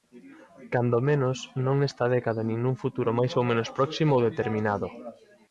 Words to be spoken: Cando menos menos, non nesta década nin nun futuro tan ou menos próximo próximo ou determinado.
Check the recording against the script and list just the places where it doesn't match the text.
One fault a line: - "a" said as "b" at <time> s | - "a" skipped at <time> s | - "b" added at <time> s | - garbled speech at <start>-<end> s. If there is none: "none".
- "menos" skipped at 1.4 s
- "tan" said as "máis" at 3.2 s
- "próximo" skipped at 4.1 s